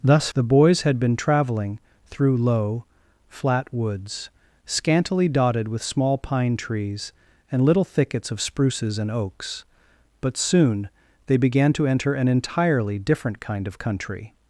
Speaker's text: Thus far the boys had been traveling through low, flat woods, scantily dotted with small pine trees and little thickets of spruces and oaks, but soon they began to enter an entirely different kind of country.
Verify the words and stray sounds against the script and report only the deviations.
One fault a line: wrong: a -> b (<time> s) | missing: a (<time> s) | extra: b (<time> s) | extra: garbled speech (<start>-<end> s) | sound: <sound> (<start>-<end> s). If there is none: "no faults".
missing: far (0.3 s)